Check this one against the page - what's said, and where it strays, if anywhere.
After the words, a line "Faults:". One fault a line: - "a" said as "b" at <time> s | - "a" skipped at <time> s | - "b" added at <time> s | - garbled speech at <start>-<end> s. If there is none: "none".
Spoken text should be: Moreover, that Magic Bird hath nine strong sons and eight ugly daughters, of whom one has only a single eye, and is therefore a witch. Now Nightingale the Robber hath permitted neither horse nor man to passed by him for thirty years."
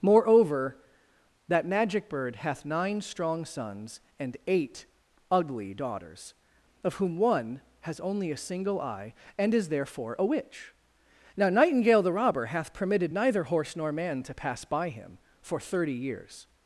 Moreover, that Magic Bird hath nine strong sons and eight ugly daughters, of whom one has only a single eye, and is therefore a witch. Now Nightingale the Robber hath permitted neither horse nor man to pass by him for thirty years."
Faults:
- "passed" said as "pass" at 14.3 s